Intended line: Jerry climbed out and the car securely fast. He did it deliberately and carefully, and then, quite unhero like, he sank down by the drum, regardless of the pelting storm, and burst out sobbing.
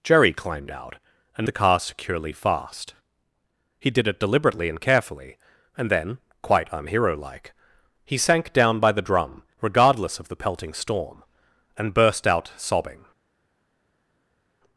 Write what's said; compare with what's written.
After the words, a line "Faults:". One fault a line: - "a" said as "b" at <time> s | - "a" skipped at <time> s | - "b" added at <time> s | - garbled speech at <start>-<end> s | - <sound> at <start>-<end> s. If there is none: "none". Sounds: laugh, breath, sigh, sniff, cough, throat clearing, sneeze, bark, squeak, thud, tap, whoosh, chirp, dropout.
Jerry climbed out and the car securely fast. He did it deliberately and carefully, and then, quite unhero like, he sank down by the drum, regardless of the pelting storm, and burst out sobbing.
Faults:
none